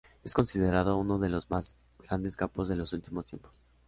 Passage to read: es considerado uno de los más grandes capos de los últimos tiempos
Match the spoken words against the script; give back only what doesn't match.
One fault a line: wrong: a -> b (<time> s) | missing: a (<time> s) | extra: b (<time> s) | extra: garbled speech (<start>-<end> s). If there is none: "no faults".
no faults